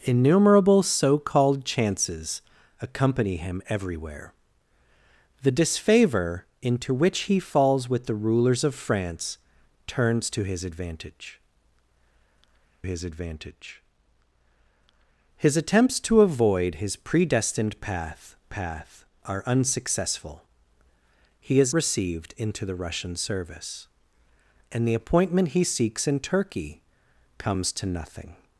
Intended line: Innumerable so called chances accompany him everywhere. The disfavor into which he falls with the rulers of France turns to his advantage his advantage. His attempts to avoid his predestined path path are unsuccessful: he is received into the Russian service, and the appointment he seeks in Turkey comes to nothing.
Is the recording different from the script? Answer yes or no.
no